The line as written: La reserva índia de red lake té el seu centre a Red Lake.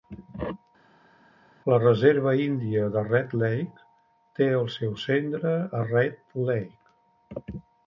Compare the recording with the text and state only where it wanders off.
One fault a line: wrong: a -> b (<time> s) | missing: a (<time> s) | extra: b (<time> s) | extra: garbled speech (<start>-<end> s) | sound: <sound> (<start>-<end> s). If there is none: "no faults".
no faults